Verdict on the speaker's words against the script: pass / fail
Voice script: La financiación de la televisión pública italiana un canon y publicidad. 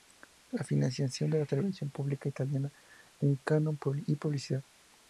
pass